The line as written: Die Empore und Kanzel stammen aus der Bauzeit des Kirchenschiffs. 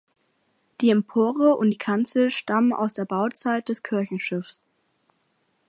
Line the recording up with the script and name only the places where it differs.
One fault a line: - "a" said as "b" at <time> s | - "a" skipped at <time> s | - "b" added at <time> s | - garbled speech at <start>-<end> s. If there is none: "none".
- "die" added at 1.7 s